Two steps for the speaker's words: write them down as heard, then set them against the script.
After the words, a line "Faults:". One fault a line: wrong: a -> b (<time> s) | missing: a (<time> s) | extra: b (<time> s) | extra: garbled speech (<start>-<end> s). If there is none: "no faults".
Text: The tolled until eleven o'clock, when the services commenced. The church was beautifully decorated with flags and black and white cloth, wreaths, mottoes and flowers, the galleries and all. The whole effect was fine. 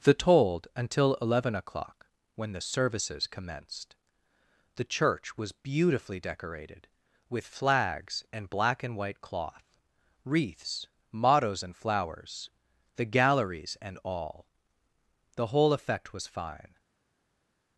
The tolled until eleven o'clock, when the services commenced. The church was beautifully decorated with flags and black and white cloth, wreaths, mottoes and flowers, the galleries and all. The whole effect was fine.
Faults:
no faults